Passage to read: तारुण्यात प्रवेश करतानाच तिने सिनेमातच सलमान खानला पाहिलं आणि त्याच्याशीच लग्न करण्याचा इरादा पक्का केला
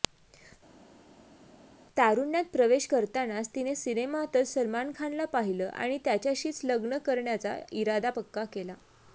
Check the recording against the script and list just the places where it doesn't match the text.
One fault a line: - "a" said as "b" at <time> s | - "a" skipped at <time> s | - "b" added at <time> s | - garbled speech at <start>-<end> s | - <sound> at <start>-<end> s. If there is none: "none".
none